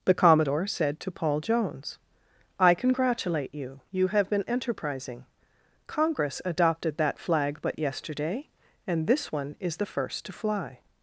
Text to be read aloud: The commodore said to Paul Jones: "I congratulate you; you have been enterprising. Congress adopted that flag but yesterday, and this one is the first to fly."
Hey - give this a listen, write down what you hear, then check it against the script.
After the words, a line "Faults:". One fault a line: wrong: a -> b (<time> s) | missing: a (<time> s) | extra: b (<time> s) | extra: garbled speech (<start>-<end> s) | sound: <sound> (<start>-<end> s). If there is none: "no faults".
The commodore said to Paul Jones: "I congratulate you; you have been enterprising. Congress adopted that flag but yesterday, and this one is the first to fly."
Faults:
no faults